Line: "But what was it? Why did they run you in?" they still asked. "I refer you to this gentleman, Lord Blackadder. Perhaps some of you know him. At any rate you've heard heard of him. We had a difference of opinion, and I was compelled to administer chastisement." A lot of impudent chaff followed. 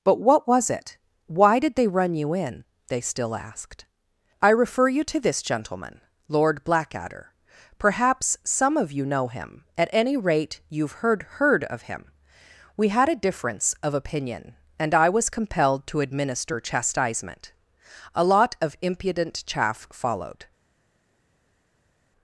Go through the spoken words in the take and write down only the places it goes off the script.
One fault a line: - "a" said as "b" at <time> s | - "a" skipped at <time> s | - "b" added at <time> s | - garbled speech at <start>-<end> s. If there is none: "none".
none